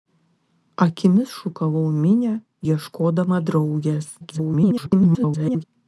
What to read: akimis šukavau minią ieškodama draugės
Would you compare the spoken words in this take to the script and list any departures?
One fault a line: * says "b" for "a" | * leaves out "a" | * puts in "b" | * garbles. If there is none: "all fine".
* garbles